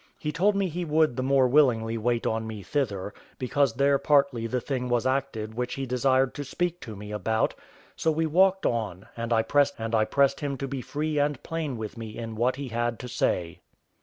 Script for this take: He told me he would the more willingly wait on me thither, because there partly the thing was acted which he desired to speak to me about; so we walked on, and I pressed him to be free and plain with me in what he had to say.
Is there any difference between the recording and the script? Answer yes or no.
yes